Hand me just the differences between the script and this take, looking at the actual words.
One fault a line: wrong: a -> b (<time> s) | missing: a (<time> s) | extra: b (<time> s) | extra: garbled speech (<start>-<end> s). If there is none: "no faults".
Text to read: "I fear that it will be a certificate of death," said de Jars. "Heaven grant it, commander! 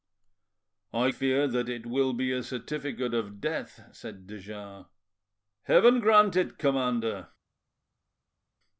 no faults